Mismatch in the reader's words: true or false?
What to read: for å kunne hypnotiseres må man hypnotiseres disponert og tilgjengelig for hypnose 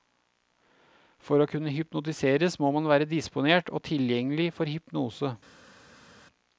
true